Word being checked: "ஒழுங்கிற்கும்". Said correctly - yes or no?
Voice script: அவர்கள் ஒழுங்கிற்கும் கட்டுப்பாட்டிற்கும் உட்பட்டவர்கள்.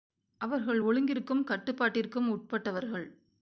yes